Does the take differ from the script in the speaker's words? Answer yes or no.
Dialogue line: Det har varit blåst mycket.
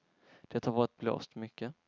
no